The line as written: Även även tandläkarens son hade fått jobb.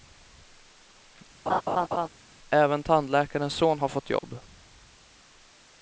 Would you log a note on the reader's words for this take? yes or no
yes